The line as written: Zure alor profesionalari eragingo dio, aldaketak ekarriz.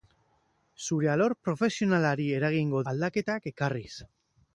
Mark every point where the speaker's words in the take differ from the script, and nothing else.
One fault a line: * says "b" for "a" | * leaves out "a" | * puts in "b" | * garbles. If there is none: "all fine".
* leaves out "dio"